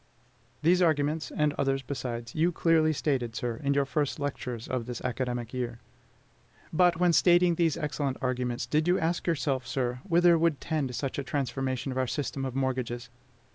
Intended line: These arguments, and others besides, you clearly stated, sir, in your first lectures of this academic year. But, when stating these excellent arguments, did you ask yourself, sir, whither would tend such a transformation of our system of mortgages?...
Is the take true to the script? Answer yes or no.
yes